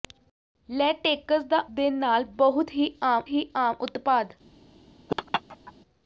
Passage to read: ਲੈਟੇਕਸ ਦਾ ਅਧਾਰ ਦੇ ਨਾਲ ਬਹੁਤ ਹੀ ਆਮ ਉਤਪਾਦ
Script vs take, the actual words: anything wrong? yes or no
yes